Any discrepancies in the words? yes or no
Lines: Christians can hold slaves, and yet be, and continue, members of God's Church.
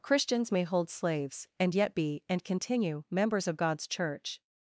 yes